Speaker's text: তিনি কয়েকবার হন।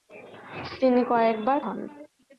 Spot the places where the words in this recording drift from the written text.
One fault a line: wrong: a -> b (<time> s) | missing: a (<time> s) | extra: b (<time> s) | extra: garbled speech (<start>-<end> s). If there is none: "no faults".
no faults